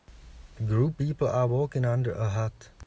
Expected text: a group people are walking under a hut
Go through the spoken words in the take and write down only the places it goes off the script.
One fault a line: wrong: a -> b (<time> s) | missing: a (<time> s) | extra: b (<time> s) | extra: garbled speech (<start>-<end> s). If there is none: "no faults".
no faults